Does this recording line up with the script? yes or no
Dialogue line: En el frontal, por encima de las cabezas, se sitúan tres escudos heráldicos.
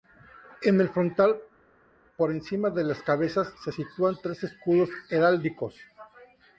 yes